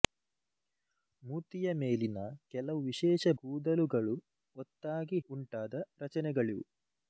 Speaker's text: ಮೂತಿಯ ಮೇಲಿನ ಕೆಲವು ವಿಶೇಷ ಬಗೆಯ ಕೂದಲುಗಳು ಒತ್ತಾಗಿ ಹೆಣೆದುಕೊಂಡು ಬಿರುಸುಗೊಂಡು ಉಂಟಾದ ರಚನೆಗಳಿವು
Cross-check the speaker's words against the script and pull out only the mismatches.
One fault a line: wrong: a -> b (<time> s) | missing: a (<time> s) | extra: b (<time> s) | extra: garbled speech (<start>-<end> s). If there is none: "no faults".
missing: ಬಗೆಯ (3.3 s)
missing: ಹೆಣೆದುಕೊಂಡು ಬಿರುಸುಗೊಂಡು (5.2 s)